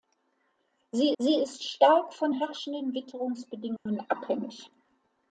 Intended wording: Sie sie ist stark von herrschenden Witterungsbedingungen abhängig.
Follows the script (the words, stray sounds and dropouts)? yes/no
no